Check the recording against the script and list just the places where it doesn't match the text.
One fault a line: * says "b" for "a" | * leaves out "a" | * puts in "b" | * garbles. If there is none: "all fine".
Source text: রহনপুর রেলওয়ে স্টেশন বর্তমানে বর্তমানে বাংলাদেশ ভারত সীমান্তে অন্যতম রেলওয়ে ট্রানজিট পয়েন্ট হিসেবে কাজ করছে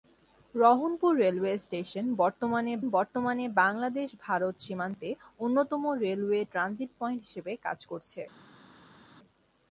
all fine